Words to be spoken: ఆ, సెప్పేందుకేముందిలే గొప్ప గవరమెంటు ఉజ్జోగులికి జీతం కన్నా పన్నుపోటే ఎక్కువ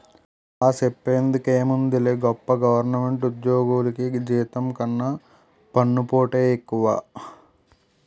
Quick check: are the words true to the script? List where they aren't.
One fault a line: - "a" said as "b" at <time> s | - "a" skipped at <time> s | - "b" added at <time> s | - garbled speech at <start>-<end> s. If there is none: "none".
none